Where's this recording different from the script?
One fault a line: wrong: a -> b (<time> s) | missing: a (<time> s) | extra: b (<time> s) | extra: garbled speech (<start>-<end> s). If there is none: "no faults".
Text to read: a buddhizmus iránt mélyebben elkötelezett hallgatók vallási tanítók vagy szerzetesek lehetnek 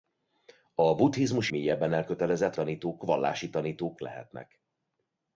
missing: iránt (1.5 s)
wrong: hallgatók -> tanítók (2.5 s)
missing: vagy szerzetesek (4.0 s)